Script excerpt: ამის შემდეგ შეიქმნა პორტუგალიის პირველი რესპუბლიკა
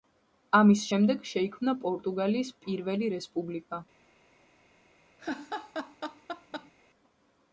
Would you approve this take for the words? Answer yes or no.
yes